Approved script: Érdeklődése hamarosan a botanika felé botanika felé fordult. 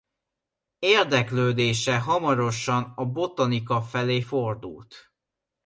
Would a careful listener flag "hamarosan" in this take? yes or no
no